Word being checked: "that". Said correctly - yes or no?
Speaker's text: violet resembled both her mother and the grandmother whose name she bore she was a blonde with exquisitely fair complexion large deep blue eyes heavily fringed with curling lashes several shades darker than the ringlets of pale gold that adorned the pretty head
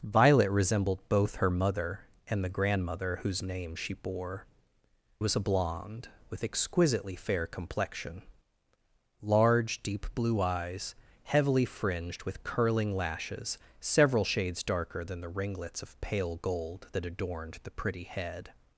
yes